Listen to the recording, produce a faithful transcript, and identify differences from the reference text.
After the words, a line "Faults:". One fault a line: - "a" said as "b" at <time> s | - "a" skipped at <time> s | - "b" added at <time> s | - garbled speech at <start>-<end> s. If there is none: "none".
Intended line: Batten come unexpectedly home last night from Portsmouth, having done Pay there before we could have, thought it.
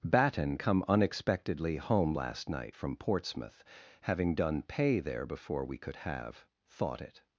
Batten come unexpectedly home last night from Portsmouth, having done Pay there before we could have, thought it.
Faults:
none